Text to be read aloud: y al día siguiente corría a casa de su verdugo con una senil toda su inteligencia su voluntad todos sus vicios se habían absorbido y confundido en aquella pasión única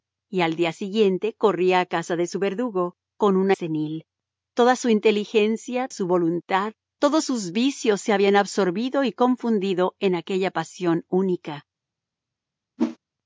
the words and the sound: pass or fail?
fail